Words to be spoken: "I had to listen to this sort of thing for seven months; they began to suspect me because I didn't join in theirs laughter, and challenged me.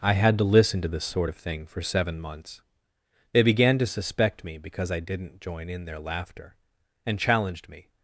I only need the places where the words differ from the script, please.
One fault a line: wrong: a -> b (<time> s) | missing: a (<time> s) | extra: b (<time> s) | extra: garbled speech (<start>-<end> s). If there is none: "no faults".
wrong: theirs -> their (5.8 s)